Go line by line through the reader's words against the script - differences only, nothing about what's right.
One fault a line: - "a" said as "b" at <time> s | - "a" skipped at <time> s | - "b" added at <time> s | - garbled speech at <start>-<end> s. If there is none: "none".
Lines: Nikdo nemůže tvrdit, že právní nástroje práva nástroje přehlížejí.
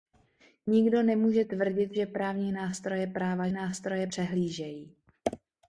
none